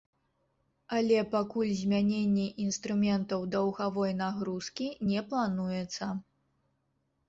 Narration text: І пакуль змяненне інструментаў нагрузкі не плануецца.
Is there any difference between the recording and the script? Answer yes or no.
yes